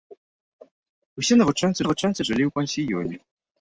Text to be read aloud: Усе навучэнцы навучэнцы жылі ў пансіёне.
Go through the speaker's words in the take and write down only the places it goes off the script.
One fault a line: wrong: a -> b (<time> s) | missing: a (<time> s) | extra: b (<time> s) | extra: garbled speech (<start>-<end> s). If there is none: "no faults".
no faults